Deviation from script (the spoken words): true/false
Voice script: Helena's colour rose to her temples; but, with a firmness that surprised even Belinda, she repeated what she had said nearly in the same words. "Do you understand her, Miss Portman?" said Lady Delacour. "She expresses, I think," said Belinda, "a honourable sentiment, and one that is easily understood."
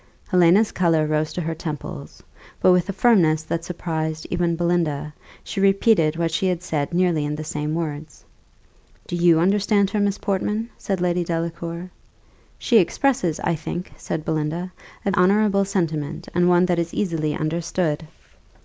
false